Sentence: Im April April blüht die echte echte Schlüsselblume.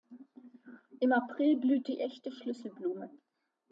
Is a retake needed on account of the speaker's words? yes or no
yes